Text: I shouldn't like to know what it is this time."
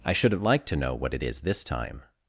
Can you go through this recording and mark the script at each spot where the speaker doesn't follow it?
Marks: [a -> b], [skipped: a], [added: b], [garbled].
I shouldn't like to know what it is this time."